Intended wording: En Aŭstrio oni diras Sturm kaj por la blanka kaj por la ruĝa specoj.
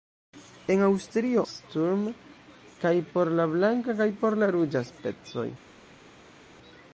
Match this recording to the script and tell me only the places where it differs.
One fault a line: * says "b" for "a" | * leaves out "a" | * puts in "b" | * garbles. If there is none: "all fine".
* leaves out "oni diras"